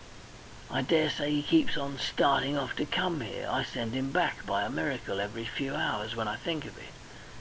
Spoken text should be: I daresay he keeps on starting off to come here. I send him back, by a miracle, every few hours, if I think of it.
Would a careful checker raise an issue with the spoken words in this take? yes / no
yes